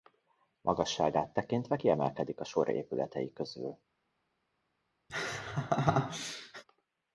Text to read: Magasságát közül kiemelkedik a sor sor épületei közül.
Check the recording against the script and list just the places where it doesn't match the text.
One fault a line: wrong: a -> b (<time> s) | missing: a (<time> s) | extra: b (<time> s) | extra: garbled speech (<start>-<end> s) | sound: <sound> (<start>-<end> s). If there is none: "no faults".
wrong: közül -> tekintve (1.3 s)
missing: sor (2.7 s)
sound: laugh (5.1-6.6 s)